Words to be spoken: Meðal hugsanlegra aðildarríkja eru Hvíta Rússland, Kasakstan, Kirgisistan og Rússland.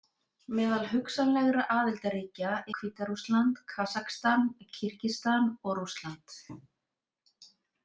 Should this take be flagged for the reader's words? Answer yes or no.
yes